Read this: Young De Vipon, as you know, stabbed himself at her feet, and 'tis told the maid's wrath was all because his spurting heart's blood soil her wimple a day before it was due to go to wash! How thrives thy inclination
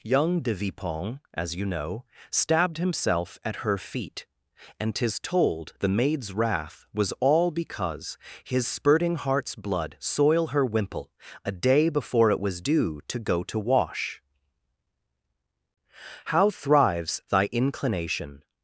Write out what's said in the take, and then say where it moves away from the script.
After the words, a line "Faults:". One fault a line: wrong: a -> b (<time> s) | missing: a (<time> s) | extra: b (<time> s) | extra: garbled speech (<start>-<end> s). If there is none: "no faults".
Young De Vipon, as you know, stabbed himself at her feet, and 'tis told the maid's wrath was all because his spurting heart's blood soil her wimple a day before it was due to go to wash! How thrives thy inclination
Faults:
no faults